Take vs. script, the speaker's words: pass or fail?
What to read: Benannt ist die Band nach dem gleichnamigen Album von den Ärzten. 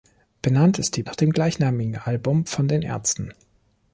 fail